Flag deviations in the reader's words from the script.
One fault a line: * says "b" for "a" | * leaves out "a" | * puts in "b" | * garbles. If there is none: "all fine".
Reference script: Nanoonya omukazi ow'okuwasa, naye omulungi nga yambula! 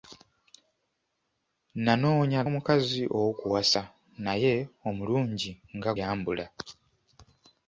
all fine